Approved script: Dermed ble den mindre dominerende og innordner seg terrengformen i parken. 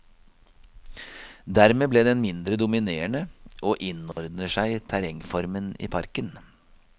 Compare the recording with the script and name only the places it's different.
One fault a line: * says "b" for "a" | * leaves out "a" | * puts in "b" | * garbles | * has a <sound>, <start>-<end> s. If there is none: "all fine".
* has a dropout, 4.1-4.2 s